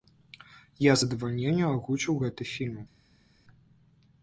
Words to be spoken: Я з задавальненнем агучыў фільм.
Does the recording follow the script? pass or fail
fail